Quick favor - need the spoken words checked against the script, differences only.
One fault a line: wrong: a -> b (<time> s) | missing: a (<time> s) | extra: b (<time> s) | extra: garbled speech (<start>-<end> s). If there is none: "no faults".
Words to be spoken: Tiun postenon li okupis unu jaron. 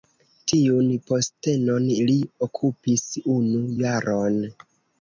no faults